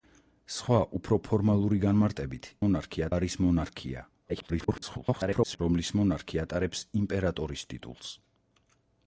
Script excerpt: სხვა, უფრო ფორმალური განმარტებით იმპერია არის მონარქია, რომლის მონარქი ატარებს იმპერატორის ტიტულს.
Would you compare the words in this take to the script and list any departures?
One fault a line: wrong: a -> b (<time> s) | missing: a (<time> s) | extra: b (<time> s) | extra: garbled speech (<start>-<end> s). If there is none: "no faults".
wrong: იმპერია -> მონარქი (2.7 s)
extra: garbled speech (4.3-5.6 s)